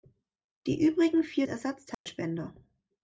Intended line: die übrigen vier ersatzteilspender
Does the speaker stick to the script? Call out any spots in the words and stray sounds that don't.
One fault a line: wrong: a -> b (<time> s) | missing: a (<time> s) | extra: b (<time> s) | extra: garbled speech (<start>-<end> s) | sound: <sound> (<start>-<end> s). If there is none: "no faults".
sound: dropout (1.9-2.1 s)